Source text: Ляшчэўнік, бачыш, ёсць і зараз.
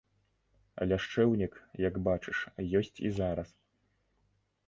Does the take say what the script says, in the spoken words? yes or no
no